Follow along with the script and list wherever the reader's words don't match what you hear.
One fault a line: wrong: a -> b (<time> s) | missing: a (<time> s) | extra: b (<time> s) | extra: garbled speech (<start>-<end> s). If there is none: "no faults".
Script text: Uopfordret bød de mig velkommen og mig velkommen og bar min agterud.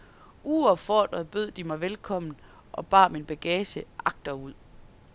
missing: mig velkommen og (2.9 s)
extra: bagage (3.2 s)